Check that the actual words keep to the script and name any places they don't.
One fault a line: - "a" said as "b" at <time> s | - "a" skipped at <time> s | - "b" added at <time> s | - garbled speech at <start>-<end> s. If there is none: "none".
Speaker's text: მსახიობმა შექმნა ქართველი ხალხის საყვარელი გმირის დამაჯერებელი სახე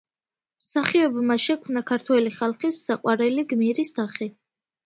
- "დამაჯერებელი" skipped at 4.0 s